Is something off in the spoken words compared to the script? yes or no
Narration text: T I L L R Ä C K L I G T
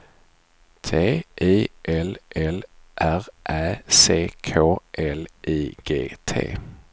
no